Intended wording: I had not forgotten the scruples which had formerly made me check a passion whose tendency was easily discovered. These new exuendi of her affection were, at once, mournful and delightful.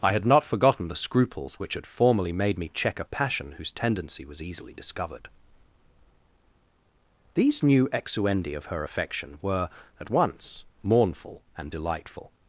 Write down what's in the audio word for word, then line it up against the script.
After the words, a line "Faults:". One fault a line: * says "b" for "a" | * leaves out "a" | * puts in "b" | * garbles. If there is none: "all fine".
I had not forgotten the scruples which had formerly made me check a passion whose tendency was easily discovered. These new exuendi of her affection were, at once, mournful and delightful.
Faults:
all fine